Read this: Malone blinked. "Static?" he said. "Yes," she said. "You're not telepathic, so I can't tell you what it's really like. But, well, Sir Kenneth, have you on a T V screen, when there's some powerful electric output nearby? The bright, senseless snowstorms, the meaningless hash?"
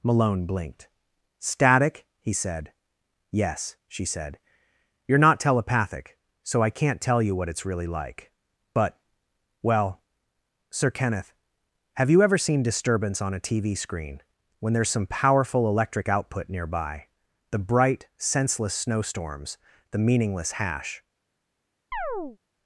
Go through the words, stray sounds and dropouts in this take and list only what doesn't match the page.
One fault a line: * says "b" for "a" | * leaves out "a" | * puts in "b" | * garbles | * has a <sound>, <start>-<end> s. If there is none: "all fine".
* puts in "ever seen disturbance"
* has a chirp, 21.9-22.4 s